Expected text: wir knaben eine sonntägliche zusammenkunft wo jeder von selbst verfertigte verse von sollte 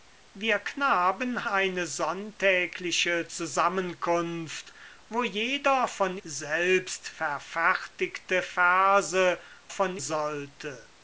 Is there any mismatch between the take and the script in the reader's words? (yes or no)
no